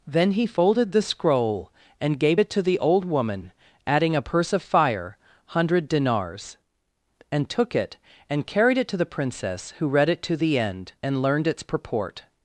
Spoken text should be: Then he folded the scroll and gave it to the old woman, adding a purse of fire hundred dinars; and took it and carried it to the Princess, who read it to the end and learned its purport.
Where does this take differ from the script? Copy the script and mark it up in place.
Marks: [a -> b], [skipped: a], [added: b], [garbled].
Then he folded the scroll and gave it to the old woman, adding a purse of fire hundred dinars; and took it and carried it to the Princess, who read it to the end and learned its purport.